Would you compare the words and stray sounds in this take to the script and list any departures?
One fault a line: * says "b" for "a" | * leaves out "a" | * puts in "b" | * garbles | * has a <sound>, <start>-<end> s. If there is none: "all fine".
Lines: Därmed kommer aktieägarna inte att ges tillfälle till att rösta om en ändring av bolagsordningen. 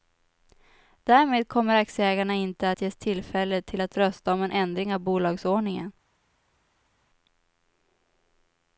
all fine